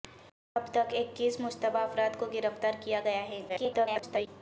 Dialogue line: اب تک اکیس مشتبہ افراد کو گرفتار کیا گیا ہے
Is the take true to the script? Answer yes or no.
no